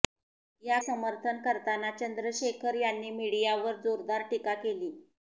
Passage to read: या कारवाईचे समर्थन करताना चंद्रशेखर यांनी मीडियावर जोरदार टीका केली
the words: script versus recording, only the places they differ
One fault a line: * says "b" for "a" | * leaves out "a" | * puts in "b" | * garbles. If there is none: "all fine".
* leaves out "कारवाईचे"